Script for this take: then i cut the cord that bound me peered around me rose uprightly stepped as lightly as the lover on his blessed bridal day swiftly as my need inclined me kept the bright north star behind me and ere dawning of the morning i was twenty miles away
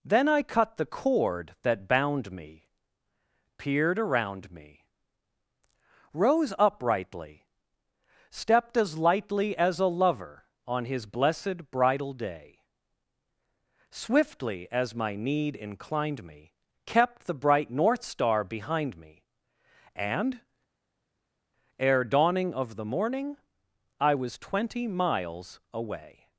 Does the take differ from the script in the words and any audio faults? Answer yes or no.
yes